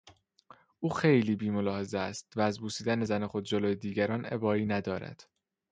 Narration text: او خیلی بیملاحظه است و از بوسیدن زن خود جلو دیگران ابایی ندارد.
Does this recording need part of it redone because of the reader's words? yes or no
no